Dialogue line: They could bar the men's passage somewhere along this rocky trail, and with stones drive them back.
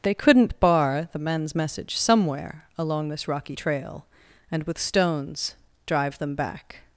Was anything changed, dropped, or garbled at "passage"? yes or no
yes